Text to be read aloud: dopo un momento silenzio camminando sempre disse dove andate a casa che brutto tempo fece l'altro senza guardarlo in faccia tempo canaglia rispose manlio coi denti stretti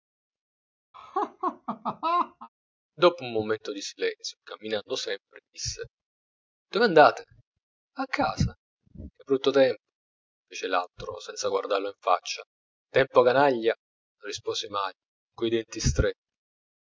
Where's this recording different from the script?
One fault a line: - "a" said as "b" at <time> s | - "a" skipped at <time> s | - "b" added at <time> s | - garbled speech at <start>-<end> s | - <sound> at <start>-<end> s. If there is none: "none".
- laugh at 0.9-2.5 s
- "di" added at 3.7 s